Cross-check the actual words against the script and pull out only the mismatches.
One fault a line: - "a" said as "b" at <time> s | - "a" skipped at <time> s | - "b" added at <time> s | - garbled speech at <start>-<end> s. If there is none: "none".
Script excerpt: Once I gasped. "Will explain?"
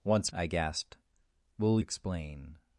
none